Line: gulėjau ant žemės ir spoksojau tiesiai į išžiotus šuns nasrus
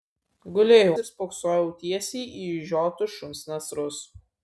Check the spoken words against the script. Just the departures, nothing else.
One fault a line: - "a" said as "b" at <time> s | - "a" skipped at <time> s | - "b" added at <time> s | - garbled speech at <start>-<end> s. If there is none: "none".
- "ant žemės" skipped at 0.9 s